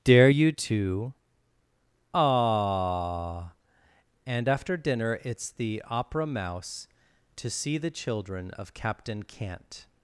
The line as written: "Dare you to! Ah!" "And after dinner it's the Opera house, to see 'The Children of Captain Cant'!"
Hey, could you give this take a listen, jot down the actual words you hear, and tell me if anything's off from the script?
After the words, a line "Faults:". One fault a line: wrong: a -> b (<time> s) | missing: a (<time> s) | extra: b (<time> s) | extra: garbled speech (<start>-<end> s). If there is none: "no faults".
"Dare you to! Ah!" "And after dinner it's the Opera mouse, to see 'The Children of Captain Cant'!"
Faults:
wrong: house -> mouse (6.3 s)